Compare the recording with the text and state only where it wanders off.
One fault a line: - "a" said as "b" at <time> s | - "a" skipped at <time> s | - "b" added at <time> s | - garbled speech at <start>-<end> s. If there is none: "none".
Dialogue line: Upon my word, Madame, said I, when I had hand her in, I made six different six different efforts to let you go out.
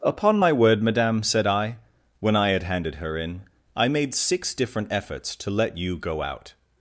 - "hand" said as "handed" at 2.6 s
- "six different" skipped at 4.9 s